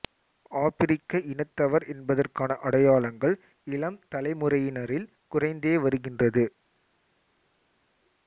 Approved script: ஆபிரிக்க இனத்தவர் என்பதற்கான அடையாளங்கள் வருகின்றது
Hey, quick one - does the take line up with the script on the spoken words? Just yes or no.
no